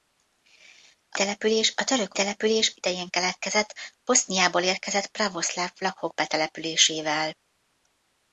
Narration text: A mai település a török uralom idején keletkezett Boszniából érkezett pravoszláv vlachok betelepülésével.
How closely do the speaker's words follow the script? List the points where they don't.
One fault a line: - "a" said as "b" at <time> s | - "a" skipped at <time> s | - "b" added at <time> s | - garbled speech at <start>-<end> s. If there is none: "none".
- "mai" skipped at 1.2 s
- "uralom" said as "település" at 2.1 s